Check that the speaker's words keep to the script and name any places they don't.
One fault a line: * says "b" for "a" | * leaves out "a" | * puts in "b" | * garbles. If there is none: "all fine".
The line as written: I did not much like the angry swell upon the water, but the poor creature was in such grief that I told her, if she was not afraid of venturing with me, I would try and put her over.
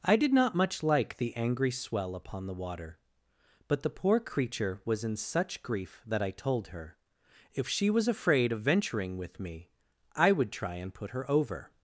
* leaves out "not"